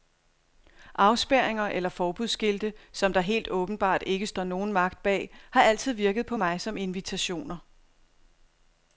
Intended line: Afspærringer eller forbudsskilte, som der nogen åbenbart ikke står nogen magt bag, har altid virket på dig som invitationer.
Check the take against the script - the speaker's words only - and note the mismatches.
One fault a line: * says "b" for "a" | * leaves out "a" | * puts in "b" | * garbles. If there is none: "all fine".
* says "helt" for "nogen"
* says "mig" for "dig"